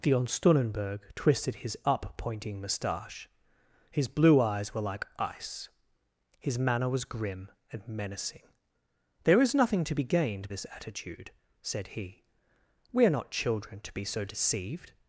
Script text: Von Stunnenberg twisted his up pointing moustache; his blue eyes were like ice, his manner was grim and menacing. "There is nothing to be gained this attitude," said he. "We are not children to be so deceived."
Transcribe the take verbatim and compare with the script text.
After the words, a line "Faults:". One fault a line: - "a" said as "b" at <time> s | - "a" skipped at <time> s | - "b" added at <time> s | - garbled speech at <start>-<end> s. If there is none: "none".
Von Stunnenberg twisted his up pointing moustache; his blue eyes were like ice, his manner was grim and menacing. "There is nothing to be gained this attitude," said he. "We are not children to be so deceived."
Faults:
none